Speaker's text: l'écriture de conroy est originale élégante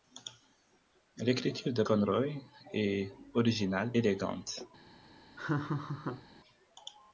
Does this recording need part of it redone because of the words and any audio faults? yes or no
yes